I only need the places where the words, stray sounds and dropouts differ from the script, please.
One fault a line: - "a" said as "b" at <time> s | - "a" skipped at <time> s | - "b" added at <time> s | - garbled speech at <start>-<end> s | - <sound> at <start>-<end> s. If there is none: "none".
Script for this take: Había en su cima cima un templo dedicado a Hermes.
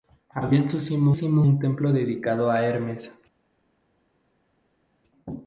none